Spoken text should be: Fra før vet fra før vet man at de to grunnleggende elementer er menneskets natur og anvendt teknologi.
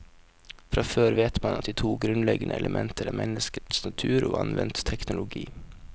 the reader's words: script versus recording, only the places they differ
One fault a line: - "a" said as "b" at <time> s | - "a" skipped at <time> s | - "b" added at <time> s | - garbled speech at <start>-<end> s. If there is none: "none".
- "fra før vet" skipped at 1.4 s